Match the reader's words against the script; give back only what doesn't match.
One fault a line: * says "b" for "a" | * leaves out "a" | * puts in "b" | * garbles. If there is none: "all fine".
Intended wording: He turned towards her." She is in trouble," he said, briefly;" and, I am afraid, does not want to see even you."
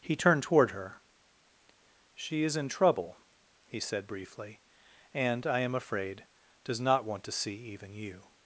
* says "toward" for "towards"